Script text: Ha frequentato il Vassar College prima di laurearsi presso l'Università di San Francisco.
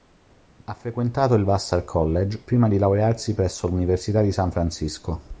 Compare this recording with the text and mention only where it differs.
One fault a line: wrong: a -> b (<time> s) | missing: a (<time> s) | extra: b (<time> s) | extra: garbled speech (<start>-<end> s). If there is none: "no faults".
no faults